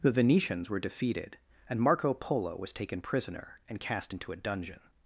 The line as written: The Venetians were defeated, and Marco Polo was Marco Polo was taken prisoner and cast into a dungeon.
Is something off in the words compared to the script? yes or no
yes